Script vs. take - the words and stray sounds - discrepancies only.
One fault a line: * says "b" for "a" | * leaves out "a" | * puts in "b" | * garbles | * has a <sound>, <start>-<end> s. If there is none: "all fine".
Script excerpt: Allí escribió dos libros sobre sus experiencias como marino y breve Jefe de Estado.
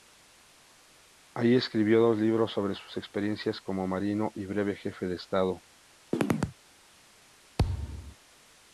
* has a chirp, 6.1-6.6 s
* has a thud, 7.6-8.2 s